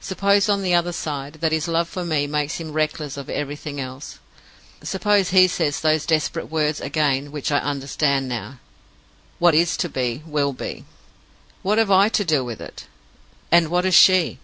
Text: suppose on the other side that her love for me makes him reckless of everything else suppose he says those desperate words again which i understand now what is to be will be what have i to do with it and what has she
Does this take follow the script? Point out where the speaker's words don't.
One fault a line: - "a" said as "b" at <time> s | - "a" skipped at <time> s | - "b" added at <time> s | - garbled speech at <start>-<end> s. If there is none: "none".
- "her" said as "his" at 1.5 s